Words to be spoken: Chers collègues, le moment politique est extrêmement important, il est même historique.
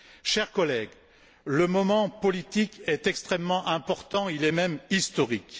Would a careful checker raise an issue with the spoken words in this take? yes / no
no